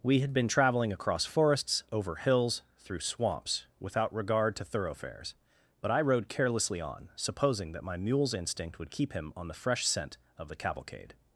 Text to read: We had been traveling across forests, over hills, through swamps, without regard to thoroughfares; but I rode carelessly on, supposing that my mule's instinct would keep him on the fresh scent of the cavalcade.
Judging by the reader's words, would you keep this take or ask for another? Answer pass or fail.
pass